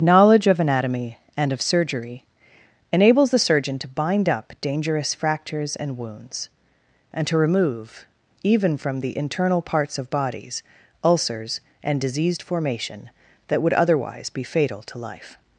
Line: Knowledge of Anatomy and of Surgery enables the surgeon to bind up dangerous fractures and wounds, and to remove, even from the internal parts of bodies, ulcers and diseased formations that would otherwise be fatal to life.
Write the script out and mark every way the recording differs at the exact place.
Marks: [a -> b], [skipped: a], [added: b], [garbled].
Knowledge of Anatomy and of Surgery enables the surgeon to bind up dangerous fractures and wounds, and to remove, even from the internal parts of bodies, ulcers and diseased [formations -> formation] that would otherwise be fatal to life.